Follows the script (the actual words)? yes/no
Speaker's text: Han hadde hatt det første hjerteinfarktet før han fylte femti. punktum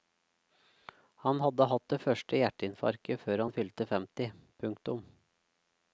yes